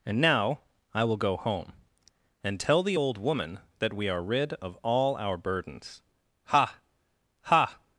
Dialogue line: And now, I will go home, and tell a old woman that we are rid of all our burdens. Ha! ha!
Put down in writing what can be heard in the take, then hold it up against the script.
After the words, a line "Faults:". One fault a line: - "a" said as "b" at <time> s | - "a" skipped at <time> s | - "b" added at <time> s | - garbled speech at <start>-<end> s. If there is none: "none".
And now, I will go home, and tell the old woman that we are rid of all our burdens. Ha! ha!
Faults:
- "a" said as "the" at 2.8 s